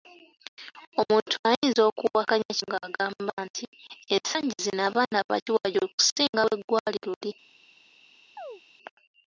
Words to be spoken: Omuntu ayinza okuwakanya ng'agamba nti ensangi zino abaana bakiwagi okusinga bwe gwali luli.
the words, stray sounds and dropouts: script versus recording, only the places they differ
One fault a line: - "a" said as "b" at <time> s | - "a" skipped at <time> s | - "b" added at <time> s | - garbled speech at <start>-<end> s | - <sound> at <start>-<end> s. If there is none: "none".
- chirp at 8.4-8.6 s